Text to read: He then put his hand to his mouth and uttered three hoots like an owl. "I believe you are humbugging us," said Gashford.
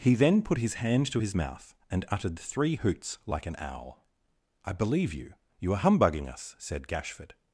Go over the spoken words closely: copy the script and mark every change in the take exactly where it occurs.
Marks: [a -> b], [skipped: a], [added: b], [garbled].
He then put his hand to his mouth and uttered three hoots like an owl. "I believe you [added: you] are humbugging us," said Gashford.